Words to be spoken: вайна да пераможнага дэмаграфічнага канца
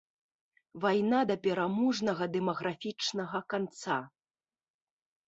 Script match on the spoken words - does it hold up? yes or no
yes